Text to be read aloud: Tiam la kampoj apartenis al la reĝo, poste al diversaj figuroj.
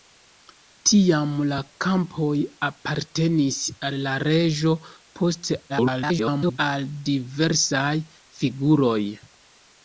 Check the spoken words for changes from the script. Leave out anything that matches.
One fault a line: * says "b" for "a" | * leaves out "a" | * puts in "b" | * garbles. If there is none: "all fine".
* garbles